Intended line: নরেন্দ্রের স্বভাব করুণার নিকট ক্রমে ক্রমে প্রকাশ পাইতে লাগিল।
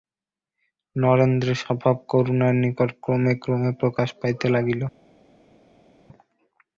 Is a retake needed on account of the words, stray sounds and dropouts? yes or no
no